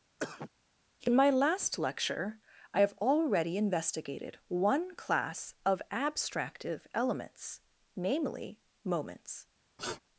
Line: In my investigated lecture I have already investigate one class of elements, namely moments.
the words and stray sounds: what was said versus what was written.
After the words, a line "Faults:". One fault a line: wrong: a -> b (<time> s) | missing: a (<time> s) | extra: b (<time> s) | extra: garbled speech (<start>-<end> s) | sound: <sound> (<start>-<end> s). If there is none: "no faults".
In my last lecture I have already investigated one class of abstractive elements, namely moments.
Faults:
sound: cough (0.2-0.5 s)
wrong: investigated -> last (1.3 s)
wrong: investigate -> investigated (3.6 s)
extra: abstractive (5.9 s)
sound: sniff (9.8-10.0 s)